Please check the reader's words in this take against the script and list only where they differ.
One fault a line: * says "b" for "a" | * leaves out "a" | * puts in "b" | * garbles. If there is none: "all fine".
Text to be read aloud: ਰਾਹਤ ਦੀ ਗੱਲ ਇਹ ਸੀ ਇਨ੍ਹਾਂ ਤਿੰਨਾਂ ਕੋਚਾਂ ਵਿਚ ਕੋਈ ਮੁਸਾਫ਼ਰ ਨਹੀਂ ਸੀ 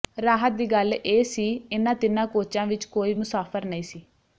all fine